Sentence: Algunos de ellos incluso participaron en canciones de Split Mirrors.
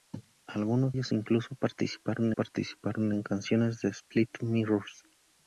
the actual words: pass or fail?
fail